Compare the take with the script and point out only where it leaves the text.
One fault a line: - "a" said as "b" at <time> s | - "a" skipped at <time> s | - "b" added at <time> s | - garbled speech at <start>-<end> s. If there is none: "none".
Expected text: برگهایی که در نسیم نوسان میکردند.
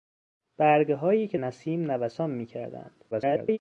- "در" skipped at 1.4 s
- garbled speech at 3.1-3.6 s